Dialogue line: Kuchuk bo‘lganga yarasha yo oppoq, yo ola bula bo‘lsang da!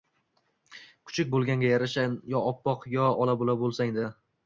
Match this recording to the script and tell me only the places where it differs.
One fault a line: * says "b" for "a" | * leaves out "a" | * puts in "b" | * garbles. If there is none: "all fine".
all fine